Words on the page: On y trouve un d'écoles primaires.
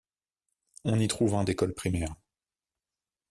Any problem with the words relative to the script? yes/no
no